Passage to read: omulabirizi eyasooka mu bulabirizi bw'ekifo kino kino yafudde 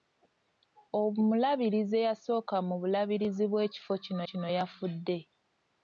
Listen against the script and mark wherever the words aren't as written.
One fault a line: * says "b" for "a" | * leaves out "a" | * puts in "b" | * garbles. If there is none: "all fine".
all fine